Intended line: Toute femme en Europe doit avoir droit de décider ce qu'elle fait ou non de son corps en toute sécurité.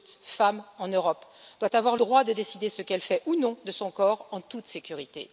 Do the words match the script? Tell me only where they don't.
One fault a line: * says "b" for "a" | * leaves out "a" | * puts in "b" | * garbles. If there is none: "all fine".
all fine